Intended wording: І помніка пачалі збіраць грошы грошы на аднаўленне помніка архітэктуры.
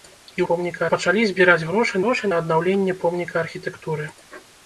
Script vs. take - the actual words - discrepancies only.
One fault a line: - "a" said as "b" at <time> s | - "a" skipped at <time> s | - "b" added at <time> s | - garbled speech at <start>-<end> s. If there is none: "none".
none